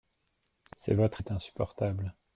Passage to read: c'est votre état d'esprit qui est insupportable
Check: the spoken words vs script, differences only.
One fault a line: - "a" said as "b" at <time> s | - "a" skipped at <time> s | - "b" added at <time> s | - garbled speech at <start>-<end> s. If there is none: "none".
- "état d'esprit qui" skipped at 1.2 s